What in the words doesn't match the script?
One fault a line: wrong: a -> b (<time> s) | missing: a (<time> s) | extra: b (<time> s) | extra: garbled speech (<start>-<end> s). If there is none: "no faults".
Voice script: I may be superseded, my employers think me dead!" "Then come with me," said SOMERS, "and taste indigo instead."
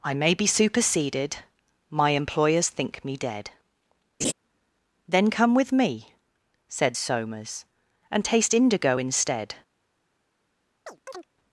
no faults